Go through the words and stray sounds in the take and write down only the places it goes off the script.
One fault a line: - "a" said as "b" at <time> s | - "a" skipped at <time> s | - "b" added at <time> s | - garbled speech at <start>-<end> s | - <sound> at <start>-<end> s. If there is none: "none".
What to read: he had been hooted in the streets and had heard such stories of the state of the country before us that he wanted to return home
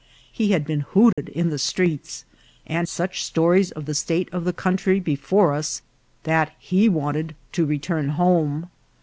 - dropout at 1.1-1.2 s
- "had heard" skipped at 2.9 s